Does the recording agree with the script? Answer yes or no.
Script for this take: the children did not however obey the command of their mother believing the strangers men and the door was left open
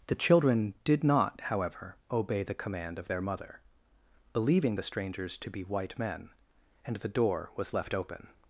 no